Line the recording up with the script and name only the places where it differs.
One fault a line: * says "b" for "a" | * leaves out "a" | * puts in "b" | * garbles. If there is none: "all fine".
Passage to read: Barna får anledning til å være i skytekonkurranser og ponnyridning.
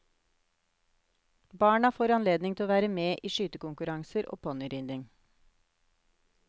* puts in "med"